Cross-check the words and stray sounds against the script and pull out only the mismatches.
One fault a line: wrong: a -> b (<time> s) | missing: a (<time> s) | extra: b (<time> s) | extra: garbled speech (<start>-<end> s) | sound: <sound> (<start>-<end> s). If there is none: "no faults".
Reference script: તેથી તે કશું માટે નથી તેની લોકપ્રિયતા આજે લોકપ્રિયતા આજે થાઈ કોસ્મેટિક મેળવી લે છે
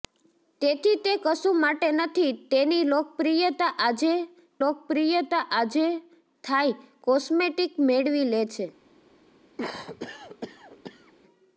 sound: cough (9.6-11.1 s)